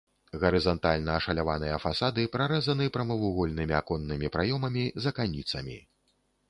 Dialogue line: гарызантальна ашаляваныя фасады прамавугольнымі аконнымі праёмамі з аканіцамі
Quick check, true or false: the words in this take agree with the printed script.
false